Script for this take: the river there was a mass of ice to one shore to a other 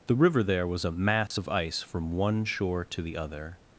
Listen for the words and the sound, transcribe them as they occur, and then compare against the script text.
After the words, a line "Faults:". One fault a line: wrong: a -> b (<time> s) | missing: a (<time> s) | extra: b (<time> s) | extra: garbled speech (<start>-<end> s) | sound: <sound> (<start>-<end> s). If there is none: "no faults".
the river there was a mass of ice from one shore to the other
Faults:
sound: dropout (1.3-1.3 s)
wrong: to -> from (1.8 s)
wrong: a -> the (3.0 s)